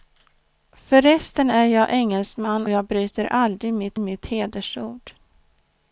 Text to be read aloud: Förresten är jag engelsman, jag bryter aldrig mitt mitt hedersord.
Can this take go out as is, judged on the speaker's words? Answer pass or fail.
pass